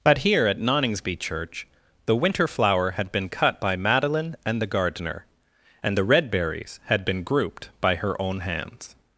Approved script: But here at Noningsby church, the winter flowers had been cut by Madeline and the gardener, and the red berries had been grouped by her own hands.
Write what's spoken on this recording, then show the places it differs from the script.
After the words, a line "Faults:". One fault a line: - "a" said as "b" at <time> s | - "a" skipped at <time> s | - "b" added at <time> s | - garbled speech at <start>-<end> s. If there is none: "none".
But here at Noningsby church, the winter flower had been cut by Madeline and the gardener, and the red berries had been grouped by her own hands.
Faults:
- "flowers" said as "flower" at 2.5 s